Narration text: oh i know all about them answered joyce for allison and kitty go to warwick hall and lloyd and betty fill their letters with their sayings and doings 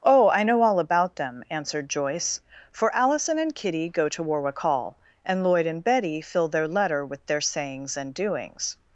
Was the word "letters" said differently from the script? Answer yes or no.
yes